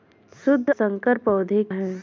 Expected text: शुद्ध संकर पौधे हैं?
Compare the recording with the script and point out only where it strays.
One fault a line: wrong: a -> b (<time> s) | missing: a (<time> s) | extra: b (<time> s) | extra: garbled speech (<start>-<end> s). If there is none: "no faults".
no faults